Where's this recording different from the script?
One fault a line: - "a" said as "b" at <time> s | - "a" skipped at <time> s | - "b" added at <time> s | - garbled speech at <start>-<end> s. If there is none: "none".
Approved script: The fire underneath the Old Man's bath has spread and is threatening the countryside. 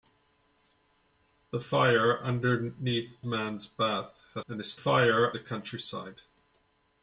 - "the Old" skipped at 3.1 s
- "spread" skipped at 4.5 s
- "threatening" said as "fire" at 4.7 s